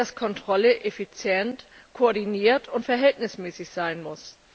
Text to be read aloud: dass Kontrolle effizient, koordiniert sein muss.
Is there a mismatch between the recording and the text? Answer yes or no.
yes